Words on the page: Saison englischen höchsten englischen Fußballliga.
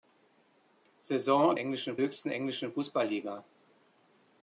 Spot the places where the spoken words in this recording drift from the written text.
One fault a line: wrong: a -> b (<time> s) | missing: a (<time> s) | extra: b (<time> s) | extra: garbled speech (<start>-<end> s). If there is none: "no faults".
no faults